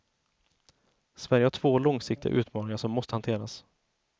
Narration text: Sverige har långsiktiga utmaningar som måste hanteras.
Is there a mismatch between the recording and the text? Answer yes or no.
yes